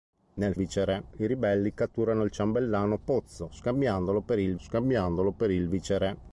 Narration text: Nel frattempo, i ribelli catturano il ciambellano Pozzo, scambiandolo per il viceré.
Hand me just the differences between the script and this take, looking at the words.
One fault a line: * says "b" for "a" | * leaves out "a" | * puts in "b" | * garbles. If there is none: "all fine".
* says "viceré" for "frattempo"
* puts in "scambiandolo per il"